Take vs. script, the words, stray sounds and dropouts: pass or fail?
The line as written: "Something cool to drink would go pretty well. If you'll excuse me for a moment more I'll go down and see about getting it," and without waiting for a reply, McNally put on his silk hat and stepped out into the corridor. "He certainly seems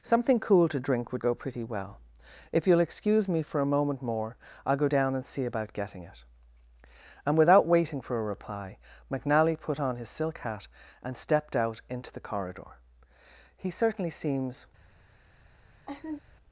fail